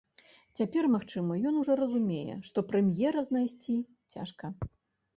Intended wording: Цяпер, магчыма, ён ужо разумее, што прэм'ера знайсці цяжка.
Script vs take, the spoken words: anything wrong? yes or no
no